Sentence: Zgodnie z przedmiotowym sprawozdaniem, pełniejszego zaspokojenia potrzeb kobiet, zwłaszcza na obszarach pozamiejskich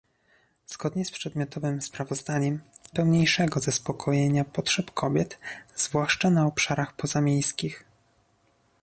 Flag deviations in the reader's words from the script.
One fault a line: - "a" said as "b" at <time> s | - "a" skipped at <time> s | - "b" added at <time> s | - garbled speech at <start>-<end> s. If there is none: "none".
none